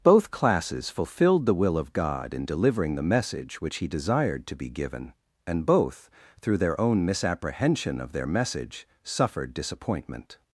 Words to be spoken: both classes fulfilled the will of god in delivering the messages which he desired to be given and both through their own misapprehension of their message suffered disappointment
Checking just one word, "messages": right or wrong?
wrong